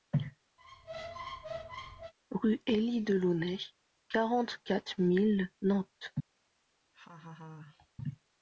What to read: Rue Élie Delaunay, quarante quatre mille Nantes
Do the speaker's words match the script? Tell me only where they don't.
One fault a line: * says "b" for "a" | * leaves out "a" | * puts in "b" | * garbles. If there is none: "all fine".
all fine